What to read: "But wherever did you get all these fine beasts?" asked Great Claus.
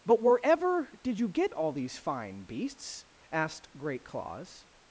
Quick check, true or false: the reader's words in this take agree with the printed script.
true